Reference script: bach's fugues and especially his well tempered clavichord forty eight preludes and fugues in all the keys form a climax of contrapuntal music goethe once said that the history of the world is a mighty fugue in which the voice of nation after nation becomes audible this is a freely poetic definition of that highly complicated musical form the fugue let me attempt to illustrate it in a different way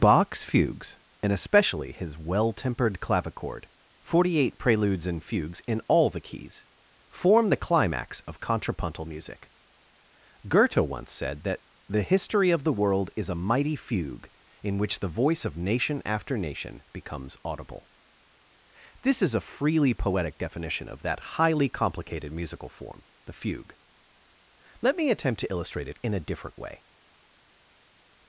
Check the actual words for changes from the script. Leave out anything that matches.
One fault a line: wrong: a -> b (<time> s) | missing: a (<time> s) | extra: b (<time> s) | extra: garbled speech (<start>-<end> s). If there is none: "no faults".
wrong: a -> the (7.5 s)